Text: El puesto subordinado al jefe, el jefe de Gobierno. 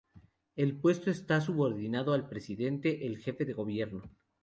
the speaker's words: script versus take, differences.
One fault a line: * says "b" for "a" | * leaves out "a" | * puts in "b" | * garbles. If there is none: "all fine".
* puts in "está"
* says "presidente" for "jefe"